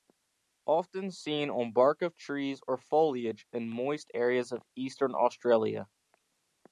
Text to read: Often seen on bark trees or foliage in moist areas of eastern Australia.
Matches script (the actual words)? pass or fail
fail